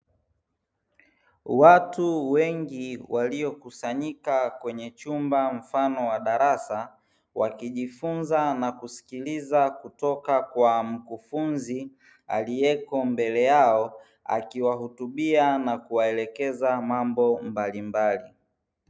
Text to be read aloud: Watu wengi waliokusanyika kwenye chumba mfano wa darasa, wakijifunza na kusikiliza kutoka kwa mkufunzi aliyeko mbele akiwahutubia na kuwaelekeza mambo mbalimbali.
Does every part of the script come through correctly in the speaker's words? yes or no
no